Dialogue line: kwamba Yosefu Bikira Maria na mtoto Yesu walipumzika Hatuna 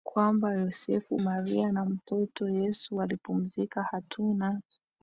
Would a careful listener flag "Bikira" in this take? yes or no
yes